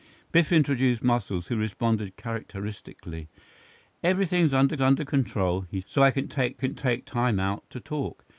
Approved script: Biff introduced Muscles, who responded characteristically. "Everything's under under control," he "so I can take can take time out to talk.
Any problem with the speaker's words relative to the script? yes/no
no